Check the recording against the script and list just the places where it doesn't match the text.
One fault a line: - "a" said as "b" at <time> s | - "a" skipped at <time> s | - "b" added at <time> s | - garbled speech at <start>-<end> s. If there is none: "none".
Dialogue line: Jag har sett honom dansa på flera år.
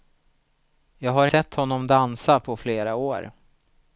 none